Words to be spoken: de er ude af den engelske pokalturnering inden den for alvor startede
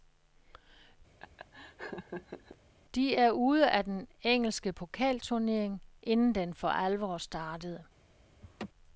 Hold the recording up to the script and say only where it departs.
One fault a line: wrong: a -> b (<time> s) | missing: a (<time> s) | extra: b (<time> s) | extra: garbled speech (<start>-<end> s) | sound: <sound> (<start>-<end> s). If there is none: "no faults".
sound: laugh (1.2-2.6 s)
sound: laugh (8.4-8.7 s)